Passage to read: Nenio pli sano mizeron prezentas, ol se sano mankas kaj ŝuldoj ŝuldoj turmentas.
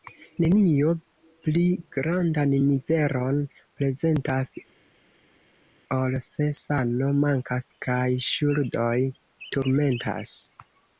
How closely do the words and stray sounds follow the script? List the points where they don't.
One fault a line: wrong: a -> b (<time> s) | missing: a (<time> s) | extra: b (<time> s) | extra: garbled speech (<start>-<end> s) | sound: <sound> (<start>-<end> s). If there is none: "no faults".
wrong: sano -> grandan (2.0 s)
missing: ŝuldoj (9.0 s)